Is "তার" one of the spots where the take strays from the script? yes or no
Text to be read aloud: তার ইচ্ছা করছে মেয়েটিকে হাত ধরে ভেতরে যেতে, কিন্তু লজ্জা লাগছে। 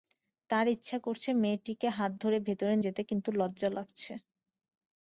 no